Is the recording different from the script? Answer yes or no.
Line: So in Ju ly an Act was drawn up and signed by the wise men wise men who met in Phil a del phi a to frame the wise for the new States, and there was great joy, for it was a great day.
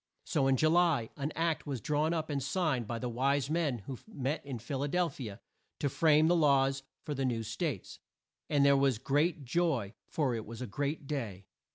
yes